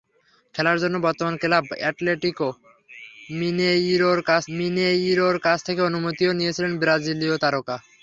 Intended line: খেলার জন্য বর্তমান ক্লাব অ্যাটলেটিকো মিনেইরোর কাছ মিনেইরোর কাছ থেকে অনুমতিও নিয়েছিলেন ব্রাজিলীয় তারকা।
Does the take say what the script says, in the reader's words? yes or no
yes